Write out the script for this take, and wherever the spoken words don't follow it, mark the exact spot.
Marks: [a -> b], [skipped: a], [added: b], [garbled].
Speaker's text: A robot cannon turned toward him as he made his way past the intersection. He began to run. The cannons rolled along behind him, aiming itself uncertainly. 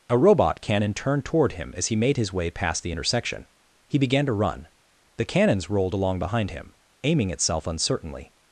A robot cannon turned toward him as he made his way past the intersection. He began to run. The cannons rolled along behind him, aiming itself uncertainly.